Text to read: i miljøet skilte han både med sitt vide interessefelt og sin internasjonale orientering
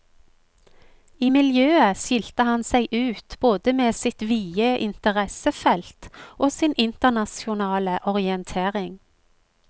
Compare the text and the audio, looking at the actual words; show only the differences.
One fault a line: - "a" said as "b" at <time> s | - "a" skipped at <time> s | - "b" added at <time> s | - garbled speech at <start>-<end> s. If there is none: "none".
- "seg ut" added at 2.7 s